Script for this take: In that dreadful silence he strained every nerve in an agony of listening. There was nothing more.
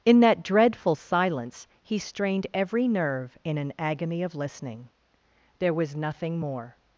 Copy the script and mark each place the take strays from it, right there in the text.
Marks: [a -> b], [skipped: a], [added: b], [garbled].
In that dreadful silence he strained every nerve in an agony of listening. There was nothing more.